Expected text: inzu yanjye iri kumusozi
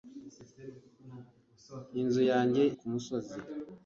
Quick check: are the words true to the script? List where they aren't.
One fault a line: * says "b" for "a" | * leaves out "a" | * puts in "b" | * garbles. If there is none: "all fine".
* leaves out "iri"